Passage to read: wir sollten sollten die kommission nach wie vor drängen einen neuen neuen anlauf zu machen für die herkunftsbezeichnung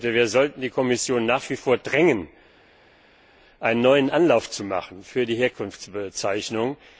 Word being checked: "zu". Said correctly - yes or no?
yes